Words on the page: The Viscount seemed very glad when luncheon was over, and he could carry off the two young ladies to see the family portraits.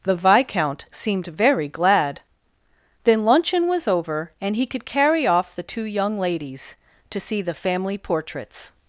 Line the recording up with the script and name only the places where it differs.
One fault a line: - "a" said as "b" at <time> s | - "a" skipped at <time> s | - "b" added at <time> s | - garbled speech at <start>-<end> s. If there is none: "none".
- "when" said as "then" at 3.0 s